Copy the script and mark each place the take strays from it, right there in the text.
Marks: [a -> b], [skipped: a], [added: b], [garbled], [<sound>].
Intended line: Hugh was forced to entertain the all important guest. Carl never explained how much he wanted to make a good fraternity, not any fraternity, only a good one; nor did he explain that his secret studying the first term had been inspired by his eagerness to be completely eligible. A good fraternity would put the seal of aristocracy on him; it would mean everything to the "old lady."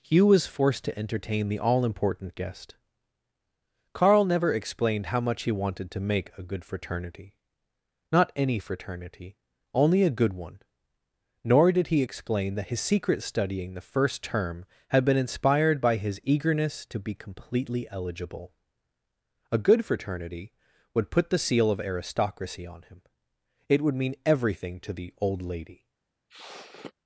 Hugh was forced to entertain the all important guest. Carl never explained how much he wanted to make a good fraternity, not any fraternity, only a good one; nor did he explain that his secret studying the first term had been inspired by his eagerness to be completely eligible. A good fraternity would put the seal of aristocracy on him; it would mean everything to the "old lady." [sniff]